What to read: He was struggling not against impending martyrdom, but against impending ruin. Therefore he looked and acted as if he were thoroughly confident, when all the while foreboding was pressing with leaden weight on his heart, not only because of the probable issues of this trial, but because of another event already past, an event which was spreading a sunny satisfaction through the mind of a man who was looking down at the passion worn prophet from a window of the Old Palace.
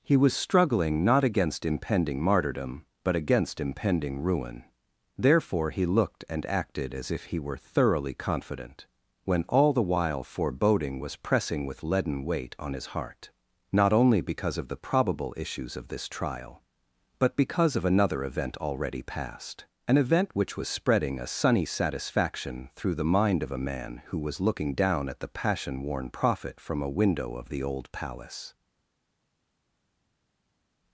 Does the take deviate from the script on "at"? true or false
false